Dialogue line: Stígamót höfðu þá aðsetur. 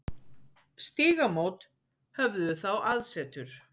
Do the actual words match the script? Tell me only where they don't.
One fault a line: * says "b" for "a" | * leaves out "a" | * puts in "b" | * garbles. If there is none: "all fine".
all fine